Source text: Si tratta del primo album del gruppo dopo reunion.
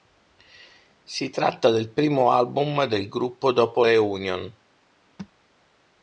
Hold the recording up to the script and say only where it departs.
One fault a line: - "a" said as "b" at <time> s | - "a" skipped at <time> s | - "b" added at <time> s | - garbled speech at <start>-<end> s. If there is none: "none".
none